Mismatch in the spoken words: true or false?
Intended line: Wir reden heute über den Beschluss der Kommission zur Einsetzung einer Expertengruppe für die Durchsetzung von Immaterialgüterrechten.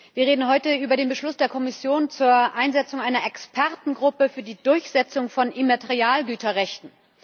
false